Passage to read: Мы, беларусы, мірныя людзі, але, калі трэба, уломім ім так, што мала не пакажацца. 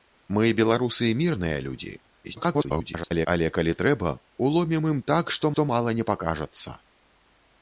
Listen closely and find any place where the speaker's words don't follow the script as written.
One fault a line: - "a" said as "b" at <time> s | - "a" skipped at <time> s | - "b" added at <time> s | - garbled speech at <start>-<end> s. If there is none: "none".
- garbled speech at 2.2-3.3 s
- "што" added at 5.5 s